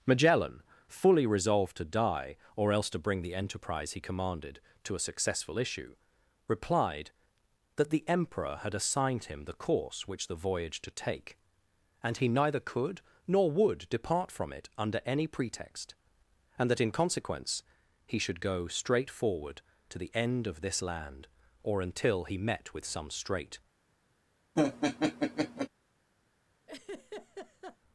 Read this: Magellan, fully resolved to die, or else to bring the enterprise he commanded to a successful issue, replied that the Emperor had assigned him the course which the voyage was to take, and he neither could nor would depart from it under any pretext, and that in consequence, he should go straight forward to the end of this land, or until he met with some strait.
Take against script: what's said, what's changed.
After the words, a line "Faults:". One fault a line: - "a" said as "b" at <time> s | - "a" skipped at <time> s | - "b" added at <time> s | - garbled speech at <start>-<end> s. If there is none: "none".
Magellan, fully resolved to die, or else to bring the enterprise he commanded to a successful issue, replied that the Emperor had assigned him the course which the voyage to take, and he neither could nor would depart from it under any pretext, and that in consequence, he should go straight forward to the end of this land, or until he met with some strait.
Faults:
- "was" skipped at 10.8 s